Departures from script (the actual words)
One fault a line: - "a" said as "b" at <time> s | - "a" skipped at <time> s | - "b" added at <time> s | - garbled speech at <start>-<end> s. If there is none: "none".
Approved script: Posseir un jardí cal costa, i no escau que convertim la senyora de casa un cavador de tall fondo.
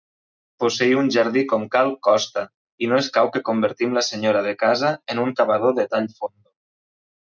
- "com" added at 1.5 s
- "en" added at 5.2 s